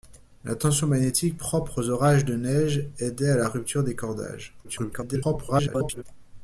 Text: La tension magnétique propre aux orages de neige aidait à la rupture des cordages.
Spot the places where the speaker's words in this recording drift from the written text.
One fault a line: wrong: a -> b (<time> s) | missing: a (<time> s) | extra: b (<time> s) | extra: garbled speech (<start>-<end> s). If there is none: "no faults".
extra: garbled speech (4.6-6.0 s)